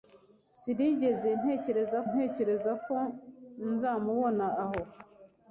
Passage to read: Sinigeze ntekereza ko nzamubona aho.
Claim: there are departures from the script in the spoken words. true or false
true